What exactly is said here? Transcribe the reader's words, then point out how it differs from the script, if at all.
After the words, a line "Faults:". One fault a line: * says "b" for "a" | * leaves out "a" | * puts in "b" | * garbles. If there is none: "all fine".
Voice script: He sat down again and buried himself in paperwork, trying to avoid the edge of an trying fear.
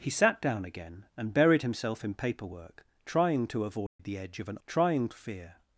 He sat down again and buried himself in paperwork, trying to avoid the edge of an trying fear.
Faults:
all fine